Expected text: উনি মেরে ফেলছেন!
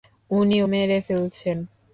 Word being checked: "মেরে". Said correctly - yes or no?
yes